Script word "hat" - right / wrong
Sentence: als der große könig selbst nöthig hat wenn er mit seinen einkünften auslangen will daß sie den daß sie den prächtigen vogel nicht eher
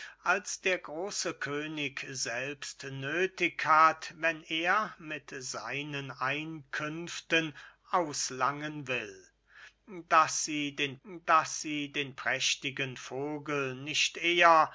right